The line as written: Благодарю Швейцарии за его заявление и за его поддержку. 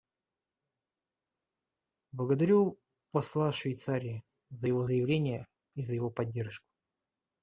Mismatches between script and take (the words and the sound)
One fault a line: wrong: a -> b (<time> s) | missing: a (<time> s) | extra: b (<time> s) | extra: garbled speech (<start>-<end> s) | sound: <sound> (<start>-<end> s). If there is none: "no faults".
extra: посла (3.1 s)